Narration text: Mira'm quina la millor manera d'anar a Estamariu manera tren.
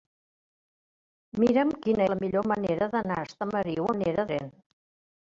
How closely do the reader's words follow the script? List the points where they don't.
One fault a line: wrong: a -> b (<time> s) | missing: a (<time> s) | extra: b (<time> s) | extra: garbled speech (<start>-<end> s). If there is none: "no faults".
no faults